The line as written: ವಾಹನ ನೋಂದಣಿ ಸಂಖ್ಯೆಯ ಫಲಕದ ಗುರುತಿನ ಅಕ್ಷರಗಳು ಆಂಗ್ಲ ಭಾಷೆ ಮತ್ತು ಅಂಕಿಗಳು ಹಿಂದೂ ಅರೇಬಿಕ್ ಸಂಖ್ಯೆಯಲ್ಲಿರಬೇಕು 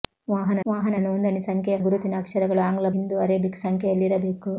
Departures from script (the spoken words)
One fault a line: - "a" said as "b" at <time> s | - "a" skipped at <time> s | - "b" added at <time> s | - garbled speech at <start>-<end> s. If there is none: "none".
- "ವಾಹನ" added at 0.7 s
- "ಫಲಕದ" skipped at 1.8 s
- "ಭಾಷೆ ಮತ್ತು ಅಂಕಿಗಳು" skipped at 2.9 s